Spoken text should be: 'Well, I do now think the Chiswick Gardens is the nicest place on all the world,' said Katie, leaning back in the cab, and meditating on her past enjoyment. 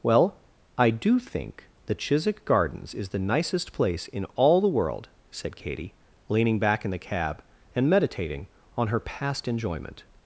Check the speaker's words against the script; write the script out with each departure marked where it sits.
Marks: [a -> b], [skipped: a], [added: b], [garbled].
'Well, I do [skipped: now] think the Chiswick Gardens is the nicest place [on -> in] all the world,' said Katie, leaning back in the cab, and meditating on her past enjoyment.